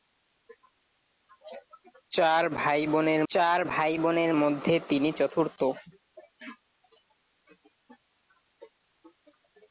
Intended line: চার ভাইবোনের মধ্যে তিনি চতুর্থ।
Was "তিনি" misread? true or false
false